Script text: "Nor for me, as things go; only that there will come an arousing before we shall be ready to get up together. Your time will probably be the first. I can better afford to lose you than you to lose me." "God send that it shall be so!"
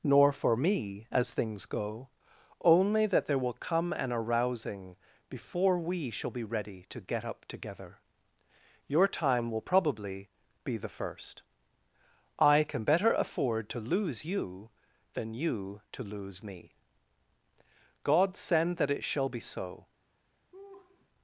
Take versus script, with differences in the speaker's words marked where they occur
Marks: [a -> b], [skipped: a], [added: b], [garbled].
"Nor for me, as things go; only that there will come an arousing before we shall be ready to get up together. Your time will probably be the first. I can better afford to lose you than you to lose me." "God send that it shall be so!"